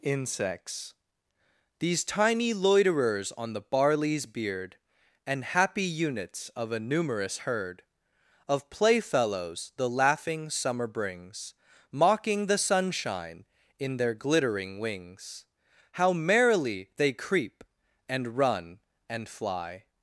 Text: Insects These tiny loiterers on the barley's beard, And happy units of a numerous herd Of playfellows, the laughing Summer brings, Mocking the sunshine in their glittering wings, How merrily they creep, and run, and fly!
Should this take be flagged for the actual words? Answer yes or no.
no